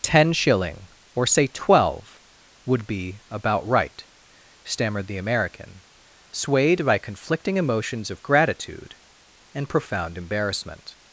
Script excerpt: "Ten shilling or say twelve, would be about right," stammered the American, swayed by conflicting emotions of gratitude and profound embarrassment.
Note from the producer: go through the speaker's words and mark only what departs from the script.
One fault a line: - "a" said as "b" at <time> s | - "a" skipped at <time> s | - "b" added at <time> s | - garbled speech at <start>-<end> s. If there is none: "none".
none